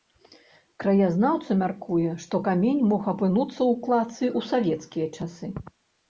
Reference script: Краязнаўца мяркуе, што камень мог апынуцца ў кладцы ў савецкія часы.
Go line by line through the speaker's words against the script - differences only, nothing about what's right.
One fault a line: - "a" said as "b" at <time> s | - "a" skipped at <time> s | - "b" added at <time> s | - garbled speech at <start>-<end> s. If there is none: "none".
none